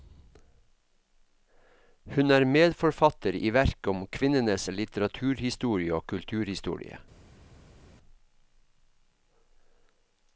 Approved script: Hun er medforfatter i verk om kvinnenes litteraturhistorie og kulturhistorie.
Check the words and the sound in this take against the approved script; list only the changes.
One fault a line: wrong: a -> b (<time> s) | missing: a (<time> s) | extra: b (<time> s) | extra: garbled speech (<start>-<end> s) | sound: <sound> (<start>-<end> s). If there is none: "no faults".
no faults